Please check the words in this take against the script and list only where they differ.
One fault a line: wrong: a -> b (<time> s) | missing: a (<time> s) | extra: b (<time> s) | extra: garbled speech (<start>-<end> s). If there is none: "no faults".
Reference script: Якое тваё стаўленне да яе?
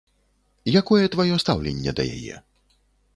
no faults